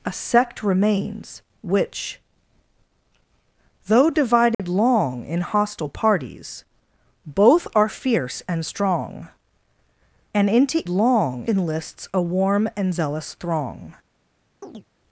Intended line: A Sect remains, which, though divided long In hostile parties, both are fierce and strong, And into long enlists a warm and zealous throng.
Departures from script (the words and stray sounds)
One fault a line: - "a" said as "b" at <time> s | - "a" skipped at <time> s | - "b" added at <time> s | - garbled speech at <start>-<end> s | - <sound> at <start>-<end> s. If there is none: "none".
- dropout at 4.5-4.6 s
- chirp at 14.6-14.9 s